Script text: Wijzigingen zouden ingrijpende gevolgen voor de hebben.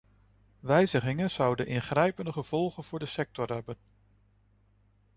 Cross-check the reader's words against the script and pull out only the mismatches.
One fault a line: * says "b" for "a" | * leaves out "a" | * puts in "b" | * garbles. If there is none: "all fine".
* puts in "sector"